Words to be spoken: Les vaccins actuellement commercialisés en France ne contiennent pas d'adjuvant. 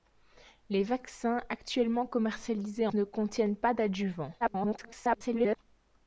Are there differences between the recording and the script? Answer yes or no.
yes